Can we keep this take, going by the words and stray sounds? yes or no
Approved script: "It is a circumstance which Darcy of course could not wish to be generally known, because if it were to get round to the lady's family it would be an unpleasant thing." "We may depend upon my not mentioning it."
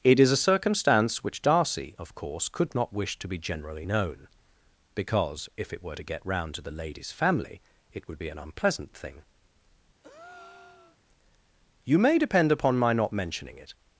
no